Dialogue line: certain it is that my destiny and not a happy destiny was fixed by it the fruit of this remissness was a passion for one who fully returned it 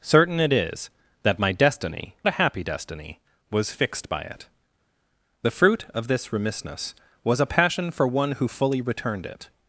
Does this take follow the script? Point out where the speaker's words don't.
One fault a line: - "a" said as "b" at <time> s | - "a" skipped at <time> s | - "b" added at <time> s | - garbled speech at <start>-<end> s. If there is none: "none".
- "and not" skipped at 2.1 s